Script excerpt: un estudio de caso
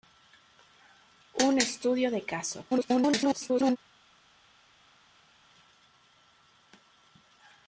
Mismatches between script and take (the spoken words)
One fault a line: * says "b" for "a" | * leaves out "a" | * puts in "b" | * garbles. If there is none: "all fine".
* garbles